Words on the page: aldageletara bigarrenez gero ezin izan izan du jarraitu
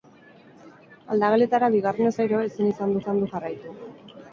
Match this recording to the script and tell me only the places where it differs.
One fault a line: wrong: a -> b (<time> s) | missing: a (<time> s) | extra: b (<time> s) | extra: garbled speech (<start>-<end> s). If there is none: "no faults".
no faults